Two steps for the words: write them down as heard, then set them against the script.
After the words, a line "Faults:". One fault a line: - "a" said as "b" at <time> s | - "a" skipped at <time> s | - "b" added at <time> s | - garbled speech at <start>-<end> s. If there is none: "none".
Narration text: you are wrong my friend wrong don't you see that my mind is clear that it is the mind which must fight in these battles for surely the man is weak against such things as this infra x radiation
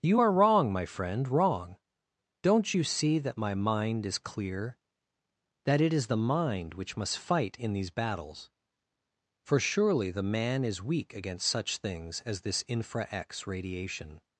you are wrong my friend wrong don't you see that my mind is clear that it is the mind which must fight in these battles for surely the man is weak against such things as this infra x radiation
Faults:
none